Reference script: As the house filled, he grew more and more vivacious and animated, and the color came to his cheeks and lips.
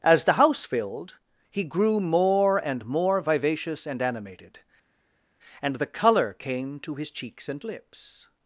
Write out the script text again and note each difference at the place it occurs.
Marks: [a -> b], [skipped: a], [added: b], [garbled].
As the house filled, he grew more and more vivacious and animated, and the color came to his cheeks and lips.